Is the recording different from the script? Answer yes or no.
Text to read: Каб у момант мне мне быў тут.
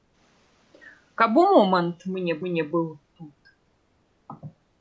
no